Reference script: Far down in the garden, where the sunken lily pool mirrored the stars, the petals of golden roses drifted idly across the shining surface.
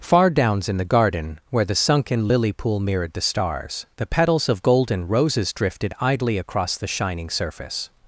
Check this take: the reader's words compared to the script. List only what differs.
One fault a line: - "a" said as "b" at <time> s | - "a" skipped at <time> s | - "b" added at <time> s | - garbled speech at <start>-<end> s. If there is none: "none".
- "down" said as "downs" at 0.3 s